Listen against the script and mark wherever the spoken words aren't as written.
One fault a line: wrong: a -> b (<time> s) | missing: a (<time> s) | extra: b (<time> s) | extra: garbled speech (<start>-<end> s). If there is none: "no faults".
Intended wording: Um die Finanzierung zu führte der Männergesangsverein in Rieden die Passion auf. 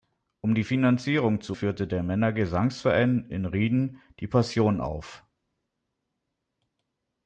no faults